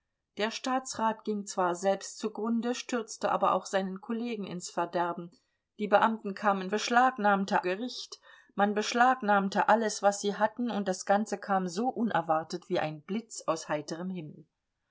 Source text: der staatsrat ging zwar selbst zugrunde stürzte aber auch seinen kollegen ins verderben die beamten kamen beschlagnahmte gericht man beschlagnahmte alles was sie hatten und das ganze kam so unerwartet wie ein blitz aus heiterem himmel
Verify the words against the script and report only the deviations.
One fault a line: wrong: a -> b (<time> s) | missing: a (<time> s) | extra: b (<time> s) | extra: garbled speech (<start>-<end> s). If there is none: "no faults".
no faults